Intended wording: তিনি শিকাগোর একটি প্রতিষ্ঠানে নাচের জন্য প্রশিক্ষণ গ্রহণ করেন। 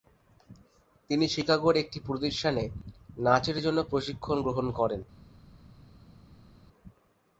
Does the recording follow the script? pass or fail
pass